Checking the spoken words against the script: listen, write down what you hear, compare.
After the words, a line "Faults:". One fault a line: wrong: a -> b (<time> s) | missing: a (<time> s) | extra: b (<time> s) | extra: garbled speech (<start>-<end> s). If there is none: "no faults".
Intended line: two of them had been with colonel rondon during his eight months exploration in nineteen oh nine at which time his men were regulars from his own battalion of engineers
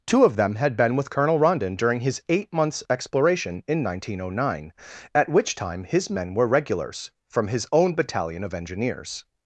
two of them had been with colonel rondon during his eight months exploration in nineteen oh nine at which time his men were regulars from his own battalion of engineers
Faults:
no faults